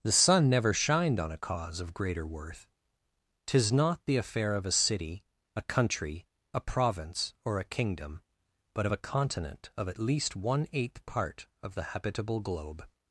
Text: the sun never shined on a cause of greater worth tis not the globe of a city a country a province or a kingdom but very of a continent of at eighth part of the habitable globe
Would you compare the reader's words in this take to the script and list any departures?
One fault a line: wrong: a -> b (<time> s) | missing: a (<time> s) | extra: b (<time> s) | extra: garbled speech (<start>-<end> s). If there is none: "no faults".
wrong: globe -> affair (4.2 s)
missing: very (8.9 s)
extra: least one (10.0 s)